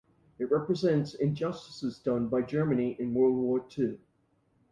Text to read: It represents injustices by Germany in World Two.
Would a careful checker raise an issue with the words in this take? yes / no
yes